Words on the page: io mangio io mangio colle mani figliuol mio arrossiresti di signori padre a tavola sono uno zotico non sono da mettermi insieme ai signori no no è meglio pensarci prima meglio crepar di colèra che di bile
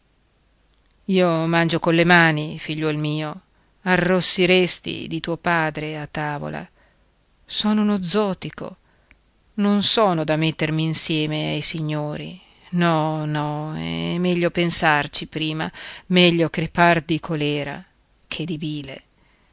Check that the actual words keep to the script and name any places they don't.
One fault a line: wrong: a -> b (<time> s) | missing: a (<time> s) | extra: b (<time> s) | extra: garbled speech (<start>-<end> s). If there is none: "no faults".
missing: io mangio (1.8 s)
wrong: signori -> tuo (5.2 s)